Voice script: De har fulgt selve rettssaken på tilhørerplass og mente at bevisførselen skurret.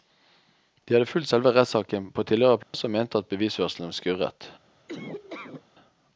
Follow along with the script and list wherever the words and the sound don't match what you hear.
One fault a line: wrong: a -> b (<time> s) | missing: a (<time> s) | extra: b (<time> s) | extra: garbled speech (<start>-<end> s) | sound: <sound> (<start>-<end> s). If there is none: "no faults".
wrong: har -> hadde (0.9 s)
sound: dropout (2.6-2.7 s)
sound: laugh (4.9-5.6 s)